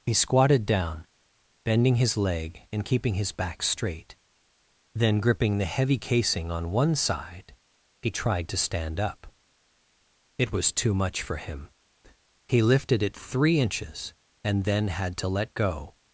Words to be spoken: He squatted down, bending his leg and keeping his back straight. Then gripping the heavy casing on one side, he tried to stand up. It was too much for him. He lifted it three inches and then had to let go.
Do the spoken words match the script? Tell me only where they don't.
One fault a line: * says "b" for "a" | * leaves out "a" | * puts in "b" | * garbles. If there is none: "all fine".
all fine